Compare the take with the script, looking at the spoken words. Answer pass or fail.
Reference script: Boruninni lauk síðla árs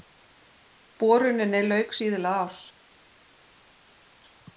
pass